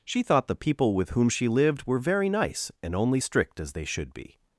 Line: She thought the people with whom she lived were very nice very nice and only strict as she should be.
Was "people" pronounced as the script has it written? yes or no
yes